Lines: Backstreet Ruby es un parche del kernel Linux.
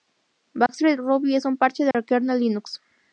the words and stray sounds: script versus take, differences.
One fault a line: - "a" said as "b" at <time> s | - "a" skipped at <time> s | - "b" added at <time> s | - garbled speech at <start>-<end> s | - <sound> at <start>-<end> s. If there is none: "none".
- dropout at 0.7-0.7 s
- dropout at 1.9-1.9 s